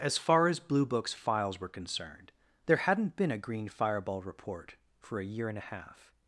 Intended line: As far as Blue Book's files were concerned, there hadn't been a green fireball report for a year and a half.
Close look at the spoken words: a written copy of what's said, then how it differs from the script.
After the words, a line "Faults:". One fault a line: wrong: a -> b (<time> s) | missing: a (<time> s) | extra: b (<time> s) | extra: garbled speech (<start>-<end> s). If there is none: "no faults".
As far as Blue Book's files were concerned, there hadn't been a green fireball report for a year and a half.
Faults:
no faults